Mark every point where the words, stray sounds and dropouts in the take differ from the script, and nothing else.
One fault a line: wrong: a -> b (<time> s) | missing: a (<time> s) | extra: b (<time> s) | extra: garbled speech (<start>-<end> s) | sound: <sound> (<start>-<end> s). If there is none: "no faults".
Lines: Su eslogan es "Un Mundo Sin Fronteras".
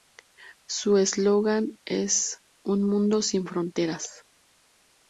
no faults